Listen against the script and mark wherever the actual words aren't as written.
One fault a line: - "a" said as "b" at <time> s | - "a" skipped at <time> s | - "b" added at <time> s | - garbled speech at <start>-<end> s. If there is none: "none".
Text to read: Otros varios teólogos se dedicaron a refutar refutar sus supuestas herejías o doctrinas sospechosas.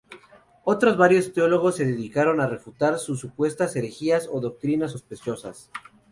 - "refutar" skipped at 3.0 s